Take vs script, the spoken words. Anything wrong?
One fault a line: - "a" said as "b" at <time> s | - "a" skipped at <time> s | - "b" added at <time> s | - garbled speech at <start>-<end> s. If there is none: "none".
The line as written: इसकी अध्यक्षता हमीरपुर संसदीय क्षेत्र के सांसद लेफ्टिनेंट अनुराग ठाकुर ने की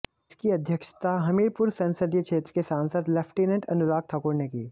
none